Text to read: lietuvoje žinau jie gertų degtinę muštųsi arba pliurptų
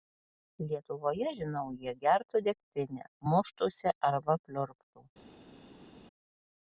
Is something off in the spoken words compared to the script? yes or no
no